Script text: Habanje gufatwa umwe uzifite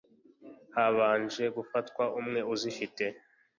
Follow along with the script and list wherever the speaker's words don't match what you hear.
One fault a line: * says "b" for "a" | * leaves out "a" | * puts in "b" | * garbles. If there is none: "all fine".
all fine